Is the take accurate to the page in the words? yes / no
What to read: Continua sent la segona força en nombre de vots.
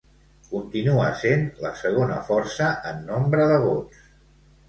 yes